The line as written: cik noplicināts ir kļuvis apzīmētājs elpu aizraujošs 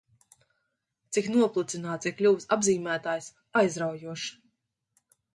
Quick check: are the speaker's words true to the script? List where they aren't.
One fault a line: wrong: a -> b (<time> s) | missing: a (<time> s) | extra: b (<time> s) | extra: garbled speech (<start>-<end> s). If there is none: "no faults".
missing: elpu (3.3 s)